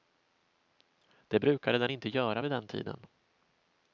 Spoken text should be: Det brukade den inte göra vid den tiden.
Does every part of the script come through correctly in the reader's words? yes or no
yes